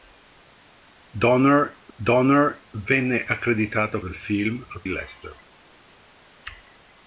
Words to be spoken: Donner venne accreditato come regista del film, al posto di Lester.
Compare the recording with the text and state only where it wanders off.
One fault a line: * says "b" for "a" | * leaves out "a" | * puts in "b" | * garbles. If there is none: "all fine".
* puts in "donner"
* leaves out "come regista"
* leaves out "posto di"